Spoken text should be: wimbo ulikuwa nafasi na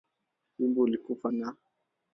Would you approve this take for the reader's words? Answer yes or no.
no